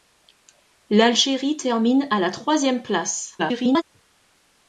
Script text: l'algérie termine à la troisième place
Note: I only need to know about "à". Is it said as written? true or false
true